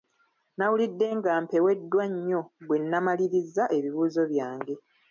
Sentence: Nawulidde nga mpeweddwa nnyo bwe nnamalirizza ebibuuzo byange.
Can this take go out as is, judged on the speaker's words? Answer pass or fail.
pass